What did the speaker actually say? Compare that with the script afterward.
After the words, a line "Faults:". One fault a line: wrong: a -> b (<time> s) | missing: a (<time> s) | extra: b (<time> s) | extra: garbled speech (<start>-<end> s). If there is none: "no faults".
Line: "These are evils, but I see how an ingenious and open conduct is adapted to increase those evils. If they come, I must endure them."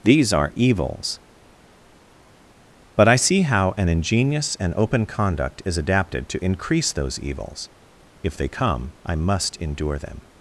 "These are evils, but I see how an ingenious and open conduct is adapted to increase those evils. If they come, I must endure them."
Faults:
no faults